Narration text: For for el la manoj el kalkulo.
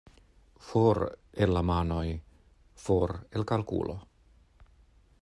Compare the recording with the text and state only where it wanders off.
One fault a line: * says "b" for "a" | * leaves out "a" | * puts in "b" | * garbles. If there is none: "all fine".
* leaves out "for"
* puts in "for"